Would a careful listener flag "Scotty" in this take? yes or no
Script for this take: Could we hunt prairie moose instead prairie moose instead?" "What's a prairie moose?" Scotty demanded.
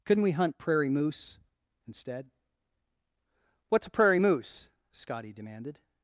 no